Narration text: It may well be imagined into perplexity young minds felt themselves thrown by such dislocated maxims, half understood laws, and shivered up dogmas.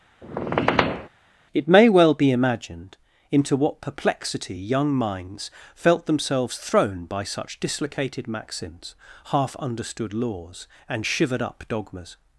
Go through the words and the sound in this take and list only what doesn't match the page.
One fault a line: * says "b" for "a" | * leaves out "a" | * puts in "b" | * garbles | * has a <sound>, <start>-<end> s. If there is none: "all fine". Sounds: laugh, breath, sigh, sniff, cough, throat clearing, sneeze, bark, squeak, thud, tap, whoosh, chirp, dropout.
* has a squeak, 0.2-1.1 s
* puts in "what"